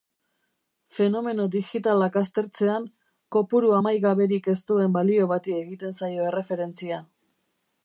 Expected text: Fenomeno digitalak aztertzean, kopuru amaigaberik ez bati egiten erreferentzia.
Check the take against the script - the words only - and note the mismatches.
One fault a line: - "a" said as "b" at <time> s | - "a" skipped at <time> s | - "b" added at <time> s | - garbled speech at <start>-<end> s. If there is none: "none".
- "duen balio" added at 4.7 s
- "zaio" added at 6.0 s